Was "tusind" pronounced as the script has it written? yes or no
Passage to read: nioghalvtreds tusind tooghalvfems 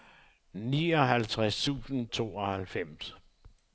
yes